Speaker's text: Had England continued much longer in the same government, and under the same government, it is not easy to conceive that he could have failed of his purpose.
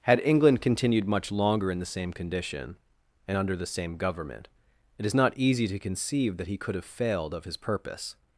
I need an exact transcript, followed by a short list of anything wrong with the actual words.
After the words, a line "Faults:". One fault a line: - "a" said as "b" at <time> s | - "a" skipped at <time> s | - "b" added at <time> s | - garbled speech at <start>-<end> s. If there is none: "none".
Had England continued much longer in the same condition, and under the same government, it is not easy to conceive that he could have failed of his purpose.
Faults:
- "government" said as "condition" at 2.1 s